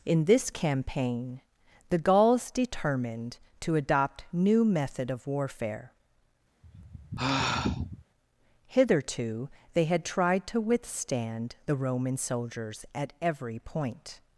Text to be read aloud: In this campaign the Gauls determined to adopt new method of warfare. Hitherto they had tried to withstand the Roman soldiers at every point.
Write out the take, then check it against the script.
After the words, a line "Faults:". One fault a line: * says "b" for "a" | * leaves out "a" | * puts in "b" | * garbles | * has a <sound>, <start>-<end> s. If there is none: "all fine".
In this campaign the Gauls determined to adopt new method of warfare. Hitherto they had tried to withstand the Roman soldiers at every point.
Faults:
* has a sigh, 6.6-8.0 s